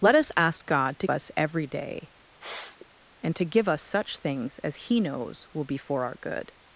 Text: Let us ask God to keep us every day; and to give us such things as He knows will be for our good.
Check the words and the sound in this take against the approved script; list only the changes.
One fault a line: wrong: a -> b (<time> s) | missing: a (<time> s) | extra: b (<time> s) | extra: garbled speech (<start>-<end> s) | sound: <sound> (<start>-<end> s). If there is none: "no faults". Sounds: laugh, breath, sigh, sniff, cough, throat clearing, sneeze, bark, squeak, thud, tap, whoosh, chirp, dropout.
missing: keep (1.1 s)
sound: sniff (2.4-2.9 s)